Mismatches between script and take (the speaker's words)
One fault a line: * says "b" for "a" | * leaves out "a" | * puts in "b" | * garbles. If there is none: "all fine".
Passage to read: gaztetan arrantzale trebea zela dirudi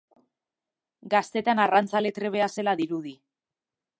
all fine